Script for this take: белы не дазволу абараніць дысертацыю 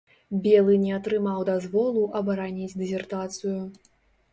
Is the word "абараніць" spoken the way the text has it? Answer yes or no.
yes